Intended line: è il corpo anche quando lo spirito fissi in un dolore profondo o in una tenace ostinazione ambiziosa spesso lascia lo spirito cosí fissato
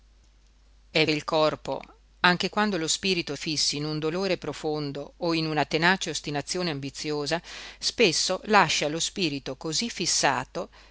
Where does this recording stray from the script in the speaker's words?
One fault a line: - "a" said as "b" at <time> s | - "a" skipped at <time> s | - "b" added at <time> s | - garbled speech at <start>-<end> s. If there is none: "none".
none